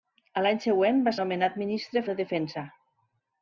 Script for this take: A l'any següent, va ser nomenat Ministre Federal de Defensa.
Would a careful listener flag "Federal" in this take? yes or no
yes